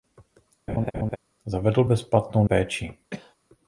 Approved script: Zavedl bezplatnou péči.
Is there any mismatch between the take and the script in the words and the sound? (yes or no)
yes